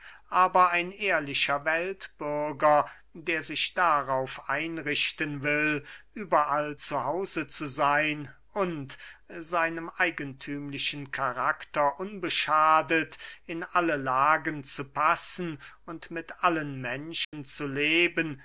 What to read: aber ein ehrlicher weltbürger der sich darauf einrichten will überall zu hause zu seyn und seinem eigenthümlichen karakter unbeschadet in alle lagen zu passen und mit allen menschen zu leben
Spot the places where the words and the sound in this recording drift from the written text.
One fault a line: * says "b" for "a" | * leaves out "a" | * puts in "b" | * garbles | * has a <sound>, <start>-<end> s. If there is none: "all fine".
* has a dropout, 17.2-17.3 s